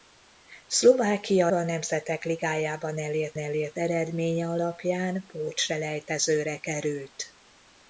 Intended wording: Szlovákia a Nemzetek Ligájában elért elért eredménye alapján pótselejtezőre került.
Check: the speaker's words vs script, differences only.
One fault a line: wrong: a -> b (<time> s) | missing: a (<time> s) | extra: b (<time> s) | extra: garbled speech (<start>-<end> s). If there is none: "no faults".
no faults